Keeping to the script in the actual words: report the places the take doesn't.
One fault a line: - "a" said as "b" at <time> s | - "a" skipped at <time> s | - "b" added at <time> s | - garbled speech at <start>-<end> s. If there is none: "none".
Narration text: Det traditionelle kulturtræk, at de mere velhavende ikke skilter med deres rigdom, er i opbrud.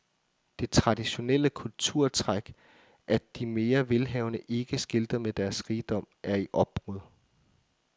none